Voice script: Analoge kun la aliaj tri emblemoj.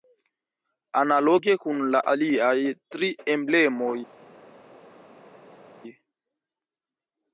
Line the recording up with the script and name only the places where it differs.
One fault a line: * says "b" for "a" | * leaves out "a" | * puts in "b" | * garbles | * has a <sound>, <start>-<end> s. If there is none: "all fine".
all fine